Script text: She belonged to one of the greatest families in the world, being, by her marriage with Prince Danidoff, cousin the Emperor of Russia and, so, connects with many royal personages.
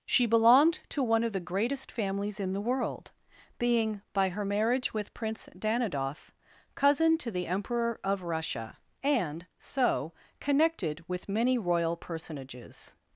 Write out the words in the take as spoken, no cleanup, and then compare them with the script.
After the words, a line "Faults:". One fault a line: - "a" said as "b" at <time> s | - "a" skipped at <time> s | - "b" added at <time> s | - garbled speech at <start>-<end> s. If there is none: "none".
She belonged to one of the greatest families in the world, being, by her marriage with Prince Danidoff, cousin to the Emperor of Russia and, so, connected with many royal personages.
Faults:
- "to" added at 7.2 s
- "connects" said as "connected" at 10.4 s